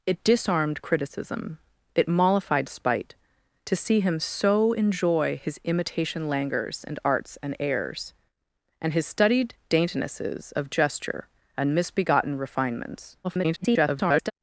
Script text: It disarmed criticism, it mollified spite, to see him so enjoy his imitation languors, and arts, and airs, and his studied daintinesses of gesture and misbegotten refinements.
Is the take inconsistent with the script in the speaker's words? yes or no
yes